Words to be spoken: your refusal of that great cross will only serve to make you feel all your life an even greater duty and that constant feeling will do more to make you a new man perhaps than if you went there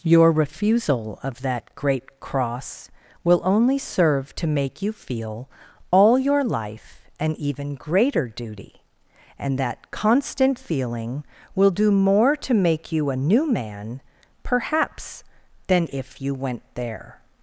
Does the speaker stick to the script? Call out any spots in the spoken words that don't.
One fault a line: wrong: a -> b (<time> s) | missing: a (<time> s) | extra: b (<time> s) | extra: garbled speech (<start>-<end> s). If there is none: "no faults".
no faults